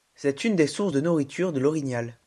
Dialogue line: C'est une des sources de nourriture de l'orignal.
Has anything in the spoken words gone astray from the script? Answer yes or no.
no